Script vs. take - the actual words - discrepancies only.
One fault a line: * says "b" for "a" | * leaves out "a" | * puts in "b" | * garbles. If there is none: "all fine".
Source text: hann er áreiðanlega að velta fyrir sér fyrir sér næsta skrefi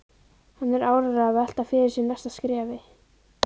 * leaves out "fyrir sér"